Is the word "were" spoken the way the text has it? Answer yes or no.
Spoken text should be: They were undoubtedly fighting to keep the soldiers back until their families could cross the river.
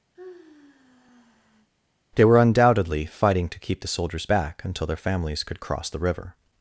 yes